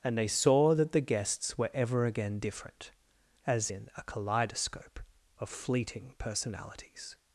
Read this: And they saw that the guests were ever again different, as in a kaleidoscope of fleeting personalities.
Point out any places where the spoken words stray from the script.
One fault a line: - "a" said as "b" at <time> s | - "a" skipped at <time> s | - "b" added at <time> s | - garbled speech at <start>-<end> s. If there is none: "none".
none